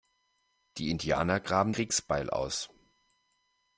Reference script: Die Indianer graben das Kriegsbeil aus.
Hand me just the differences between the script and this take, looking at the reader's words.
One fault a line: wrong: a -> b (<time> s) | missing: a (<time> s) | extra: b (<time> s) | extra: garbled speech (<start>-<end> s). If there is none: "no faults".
missing: das (1.8 s)